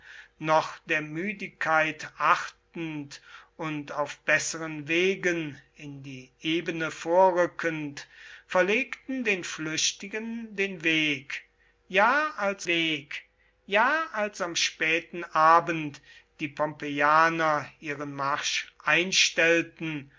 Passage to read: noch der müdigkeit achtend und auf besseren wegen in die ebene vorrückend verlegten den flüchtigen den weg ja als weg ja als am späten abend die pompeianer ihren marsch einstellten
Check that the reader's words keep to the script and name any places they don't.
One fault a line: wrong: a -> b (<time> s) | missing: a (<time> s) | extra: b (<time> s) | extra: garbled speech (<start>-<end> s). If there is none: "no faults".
no faults